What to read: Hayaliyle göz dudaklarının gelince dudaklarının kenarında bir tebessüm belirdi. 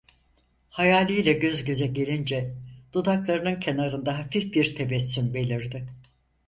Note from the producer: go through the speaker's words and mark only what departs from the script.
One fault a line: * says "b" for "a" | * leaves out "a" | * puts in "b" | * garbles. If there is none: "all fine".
* says "göze" for "dudaklarının"
* puts in "hafif"